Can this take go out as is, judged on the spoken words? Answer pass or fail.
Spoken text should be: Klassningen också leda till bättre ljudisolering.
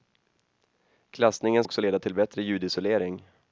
pass